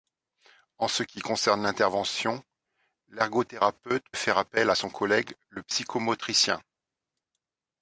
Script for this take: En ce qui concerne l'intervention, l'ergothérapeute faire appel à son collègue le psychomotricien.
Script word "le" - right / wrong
right